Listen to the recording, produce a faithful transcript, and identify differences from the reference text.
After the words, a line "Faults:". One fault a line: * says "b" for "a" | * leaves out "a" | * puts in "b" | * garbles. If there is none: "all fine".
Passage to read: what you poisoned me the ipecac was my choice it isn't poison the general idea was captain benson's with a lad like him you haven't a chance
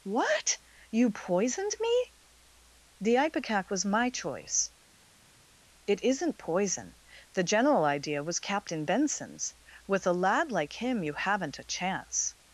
what you poisoned me the ipecac was my choice it isn't poison the general idea was captain benson's with a lad like him you haven't a chance
Faults:
all fine